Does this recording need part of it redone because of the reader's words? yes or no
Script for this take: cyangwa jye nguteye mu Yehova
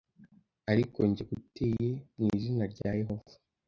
yes